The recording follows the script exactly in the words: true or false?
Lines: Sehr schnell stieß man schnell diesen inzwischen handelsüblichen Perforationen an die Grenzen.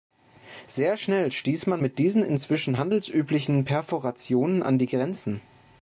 false